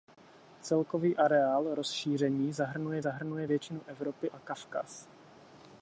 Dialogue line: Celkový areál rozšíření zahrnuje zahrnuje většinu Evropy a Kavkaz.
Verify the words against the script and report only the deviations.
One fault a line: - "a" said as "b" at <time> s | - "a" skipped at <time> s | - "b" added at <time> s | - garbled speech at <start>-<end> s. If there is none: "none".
none